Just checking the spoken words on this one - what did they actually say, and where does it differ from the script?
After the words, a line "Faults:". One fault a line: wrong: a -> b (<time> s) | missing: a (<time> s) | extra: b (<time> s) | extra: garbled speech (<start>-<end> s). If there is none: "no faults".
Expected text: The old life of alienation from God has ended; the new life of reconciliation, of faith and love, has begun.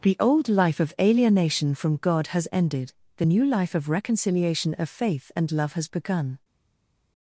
The old life of alienation from God has ended; the new life of reconciliation, of faith and love, has begun.
Faults:
no faults